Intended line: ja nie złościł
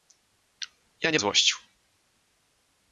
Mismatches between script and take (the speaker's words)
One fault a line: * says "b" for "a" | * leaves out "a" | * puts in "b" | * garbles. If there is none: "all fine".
all fine